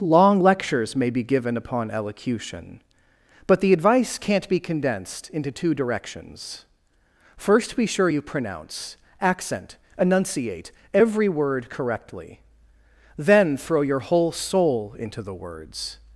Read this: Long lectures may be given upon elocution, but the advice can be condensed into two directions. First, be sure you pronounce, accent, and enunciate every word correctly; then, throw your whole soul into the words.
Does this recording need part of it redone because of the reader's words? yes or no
yes